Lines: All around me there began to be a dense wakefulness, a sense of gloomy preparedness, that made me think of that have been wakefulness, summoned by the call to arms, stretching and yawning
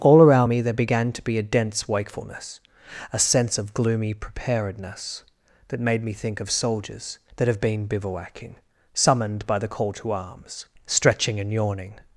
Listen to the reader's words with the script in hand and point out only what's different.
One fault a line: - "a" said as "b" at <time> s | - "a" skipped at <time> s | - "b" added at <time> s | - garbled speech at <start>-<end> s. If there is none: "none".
- "soldiers" added at 6.5 s
- "wakefulness" said as "bivouacking" at 7.9 s